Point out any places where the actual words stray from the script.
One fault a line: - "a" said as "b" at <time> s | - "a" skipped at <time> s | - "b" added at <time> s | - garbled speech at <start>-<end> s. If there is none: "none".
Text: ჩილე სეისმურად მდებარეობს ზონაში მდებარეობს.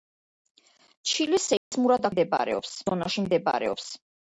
none